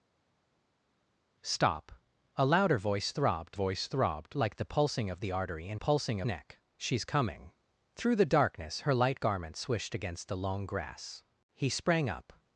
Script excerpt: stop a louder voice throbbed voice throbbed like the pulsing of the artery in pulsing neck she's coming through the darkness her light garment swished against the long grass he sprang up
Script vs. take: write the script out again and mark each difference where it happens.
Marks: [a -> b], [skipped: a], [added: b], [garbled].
stop a louder voice throbbed voice throbbed like the pulsing of the artery in pulsing neck she's coming through the darkness her light garment swished against the long grass he sprang up